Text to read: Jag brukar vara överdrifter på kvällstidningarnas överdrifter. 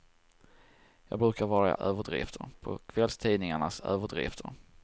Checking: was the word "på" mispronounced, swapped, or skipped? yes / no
no